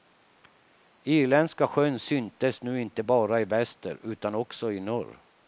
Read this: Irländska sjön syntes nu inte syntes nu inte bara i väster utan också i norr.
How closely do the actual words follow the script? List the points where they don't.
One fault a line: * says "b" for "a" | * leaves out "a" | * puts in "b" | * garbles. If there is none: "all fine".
* leaves out "syntes nu inte"